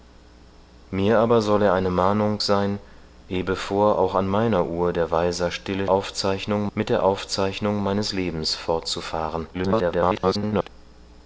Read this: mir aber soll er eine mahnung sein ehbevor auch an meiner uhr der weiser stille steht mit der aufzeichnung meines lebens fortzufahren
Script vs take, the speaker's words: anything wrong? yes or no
yes